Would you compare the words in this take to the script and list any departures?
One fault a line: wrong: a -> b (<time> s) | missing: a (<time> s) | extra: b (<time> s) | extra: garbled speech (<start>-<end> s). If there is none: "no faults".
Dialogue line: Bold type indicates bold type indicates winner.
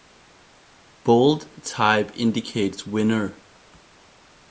missing: bold type indicates (2.9 s)